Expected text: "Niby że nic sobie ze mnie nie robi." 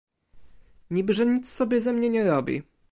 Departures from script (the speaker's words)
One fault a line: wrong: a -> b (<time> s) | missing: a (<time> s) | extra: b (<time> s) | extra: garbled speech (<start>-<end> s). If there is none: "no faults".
no faults